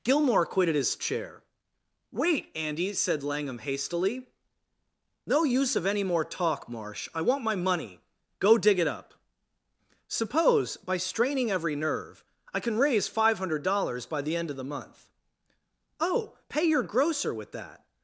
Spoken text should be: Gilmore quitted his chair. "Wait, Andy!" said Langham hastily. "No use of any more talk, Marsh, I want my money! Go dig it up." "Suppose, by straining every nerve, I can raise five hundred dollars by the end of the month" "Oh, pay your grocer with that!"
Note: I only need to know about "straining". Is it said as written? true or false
true